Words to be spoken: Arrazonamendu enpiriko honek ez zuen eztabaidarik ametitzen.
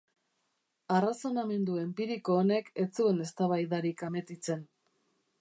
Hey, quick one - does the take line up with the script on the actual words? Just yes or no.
yes